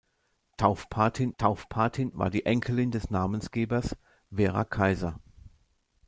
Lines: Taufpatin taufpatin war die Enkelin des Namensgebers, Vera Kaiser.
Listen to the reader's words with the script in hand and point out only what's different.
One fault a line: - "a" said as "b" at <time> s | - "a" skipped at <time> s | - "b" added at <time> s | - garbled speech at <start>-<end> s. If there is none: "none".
none